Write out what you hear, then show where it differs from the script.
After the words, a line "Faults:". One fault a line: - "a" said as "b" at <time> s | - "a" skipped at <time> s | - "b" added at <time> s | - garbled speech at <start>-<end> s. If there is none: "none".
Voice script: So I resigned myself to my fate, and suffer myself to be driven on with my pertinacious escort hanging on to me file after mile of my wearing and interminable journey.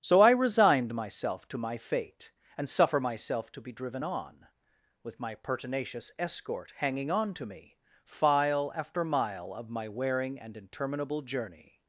So I resigned myself to my fate, and suffer myself to be driven on with my pertinacious escort hanging on to me file after mile of my wearing and interminable journey.
Faults:
none